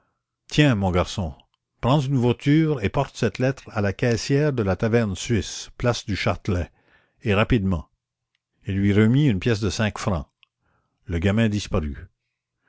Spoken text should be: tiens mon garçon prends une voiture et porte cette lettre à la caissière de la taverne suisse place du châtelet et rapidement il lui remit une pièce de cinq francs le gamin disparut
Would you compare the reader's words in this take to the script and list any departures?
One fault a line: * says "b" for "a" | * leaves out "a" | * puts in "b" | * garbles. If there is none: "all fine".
all fine